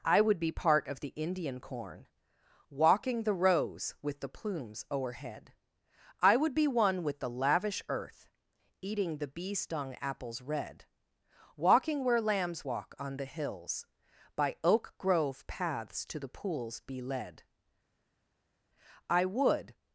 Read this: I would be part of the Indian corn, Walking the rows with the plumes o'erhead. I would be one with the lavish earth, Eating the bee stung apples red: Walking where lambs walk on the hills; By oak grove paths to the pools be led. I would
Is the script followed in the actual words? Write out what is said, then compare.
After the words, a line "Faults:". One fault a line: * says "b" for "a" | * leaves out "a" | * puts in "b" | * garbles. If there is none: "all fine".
I would be part of the Indian corn, Walking the rows with the plumes o'erhead. I would be one with the lavish earth, Eating the bee stung apples red: Walking where lambs walk on the hills; By oak grove paths to the pools be led. I would
Faults:
all fine